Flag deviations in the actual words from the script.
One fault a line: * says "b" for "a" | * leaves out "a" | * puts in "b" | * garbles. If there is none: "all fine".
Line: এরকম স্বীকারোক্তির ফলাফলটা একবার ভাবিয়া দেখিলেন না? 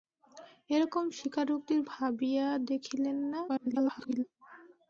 * leaves out "ফলাফলটা একবার"
* garbles